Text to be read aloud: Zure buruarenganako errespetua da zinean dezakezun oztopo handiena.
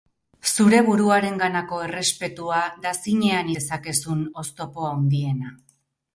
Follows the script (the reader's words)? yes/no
yes